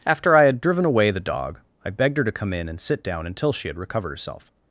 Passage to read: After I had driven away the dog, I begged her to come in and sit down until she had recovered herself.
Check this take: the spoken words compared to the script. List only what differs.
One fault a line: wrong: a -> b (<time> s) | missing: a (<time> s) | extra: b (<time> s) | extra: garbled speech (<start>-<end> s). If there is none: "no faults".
no faults